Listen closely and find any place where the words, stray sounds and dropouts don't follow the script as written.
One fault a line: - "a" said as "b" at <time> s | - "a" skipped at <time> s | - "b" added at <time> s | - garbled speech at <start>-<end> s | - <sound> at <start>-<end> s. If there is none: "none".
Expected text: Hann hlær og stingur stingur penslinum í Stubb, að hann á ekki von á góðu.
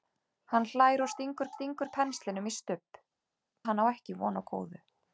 none